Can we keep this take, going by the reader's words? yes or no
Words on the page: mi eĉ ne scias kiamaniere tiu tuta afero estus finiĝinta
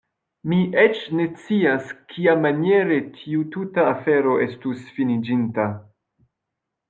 yes